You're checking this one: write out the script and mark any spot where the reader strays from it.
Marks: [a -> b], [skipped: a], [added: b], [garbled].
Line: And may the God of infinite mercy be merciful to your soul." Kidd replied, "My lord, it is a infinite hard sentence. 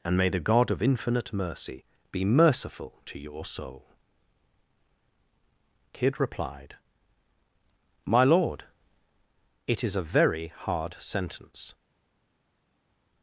And may the God of infinite mercy be merciful to your soul." Kidd replied, "My lord, it is a [infinite -> very] hard sentence.